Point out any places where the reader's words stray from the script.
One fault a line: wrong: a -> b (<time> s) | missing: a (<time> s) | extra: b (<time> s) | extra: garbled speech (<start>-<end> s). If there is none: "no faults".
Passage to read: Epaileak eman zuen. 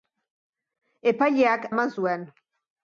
no faults